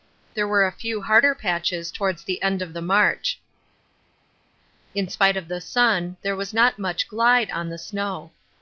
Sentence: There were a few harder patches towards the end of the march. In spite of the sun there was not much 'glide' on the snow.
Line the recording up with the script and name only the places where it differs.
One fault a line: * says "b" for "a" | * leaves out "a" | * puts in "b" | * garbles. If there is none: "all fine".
all fine